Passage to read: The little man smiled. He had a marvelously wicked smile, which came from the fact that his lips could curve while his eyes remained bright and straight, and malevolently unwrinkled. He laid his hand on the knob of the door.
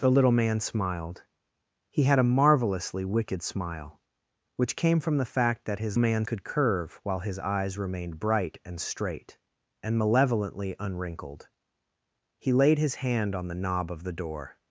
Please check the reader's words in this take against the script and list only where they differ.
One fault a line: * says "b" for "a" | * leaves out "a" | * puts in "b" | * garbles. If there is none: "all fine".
* says "man" for "lips"